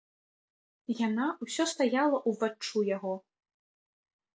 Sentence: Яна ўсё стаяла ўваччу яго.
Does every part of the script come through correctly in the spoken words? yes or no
yes